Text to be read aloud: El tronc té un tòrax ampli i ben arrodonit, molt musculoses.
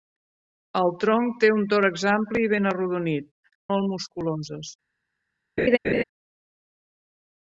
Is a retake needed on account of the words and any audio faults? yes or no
yes